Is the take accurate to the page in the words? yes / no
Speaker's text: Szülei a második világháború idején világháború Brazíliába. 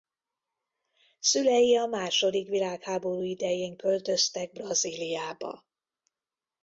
no